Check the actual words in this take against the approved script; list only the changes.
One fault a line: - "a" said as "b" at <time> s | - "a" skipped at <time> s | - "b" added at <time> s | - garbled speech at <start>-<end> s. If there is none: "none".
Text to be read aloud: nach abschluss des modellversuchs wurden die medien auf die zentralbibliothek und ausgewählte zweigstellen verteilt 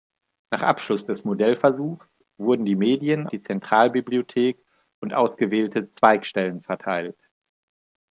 - "auf" skipped at 3.3 s